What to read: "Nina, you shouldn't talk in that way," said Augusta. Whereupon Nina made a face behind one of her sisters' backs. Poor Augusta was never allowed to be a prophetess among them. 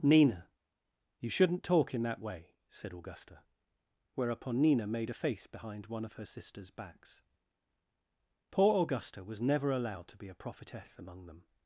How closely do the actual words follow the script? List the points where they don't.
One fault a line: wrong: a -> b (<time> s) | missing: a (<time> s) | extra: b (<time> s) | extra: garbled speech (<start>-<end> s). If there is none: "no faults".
no faults